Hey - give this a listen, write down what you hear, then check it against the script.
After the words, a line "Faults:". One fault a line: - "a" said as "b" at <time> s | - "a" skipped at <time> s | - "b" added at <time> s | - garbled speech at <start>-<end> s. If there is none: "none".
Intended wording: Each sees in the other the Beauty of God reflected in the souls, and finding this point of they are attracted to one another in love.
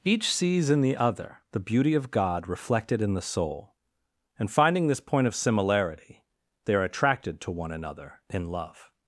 Each sees in the other the Beauty of God reflected in the soul, and finding this point of similarity, they are attracted to one another in love.
Faults:
- "souls" said as "soul" at 3.2 s
- "similarity" added at 5.3 s